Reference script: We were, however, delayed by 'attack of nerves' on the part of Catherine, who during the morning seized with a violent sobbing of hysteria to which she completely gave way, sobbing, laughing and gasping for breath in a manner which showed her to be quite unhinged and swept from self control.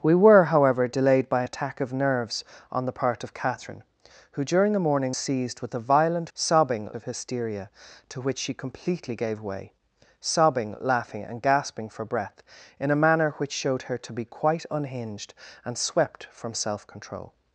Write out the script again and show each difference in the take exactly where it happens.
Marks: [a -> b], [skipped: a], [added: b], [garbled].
We were, however, delayed by 'attack of nerves' on the part of Catherine, who during the morning seized with a violent sobbing of hysteria to which she completely gave way, sobbing, laughing and gasping for breath in a manner which showed her to be quite unhinged and swept from self control.